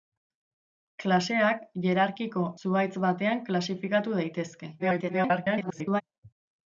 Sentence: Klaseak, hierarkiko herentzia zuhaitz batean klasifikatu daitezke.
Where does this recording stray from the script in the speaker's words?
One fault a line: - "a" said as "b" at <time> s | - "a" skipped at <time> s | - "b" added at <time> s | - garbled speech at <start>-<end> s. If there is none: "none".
- "herentzia" skipped at 2.5 s
- garbled speech at 4.8-6.0 s